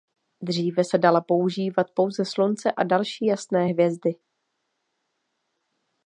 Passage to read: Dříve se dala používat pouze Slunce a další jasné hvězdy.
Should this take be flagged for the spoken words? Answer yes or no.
no